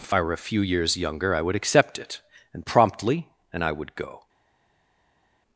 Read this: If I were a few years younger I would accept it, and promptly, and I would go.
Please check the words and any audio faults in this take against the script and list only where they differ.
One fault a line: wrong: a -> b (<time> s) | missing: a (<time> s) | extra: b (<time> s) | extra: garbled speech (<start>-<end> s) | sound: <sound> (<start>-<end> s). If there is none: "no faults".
no faults